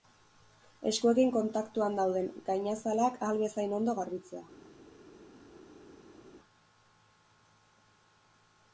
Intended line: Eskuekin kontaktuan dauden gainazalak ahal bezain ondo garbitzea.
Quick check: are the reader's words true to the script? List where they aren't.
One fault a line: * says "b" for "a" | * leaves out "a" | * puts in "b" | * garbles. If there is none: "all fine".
all fine